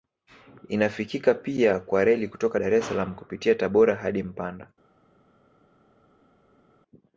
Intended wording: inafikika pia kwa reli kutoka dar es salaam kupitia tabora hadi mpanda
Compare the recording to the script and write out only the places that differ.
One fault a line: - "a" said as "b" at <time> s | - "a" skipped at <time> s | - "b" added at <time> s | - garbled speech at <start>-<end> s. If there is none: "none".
none